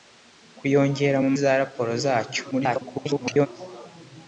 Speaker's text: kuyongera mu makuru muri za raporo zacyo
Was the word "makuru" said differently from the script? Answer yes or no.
yes